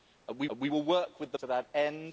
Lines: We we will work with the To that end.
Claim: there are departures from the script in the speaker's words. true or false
false